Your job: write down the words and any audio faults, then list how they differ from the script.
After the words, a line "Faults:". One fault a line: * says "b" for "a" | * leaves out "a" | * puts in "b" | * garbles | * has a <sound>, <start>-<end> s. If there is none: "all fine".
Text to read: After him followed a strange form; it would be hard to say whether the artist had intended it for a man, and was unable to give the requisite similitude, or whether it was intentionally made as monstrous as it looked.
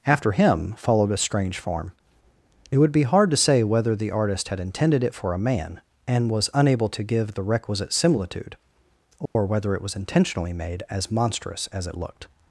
After him followed a strange form; it would be hard to say whether the artist had intended it for a man, and was unable to give the requisite similitude, or whether it was intentionally made as monstrous as it looked.
Faults:
* has a dropout, 9.3-9.4 s